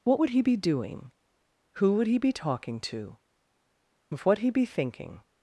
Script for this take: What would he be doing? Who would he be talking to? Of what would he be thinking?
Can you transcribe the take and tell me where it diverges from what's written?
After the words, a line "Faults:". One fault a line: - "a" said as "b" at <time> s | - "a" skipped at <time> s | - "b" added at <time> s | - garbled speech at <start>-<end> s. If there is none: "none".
What would he be doing? Who would he be talking to? Of what he be thinking?
Faults:
- "would" skipped at 4.4 s